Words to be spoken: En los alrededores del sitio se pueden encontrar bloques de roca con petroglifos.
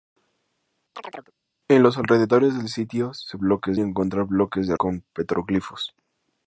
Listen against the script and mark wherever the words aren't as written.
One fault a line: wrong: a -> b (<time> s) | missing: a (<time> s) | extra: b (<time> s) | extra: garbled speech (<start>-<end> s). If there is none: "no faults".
wrong: pueden -> bloques (3.4 s)
missing: roca (4.7 s)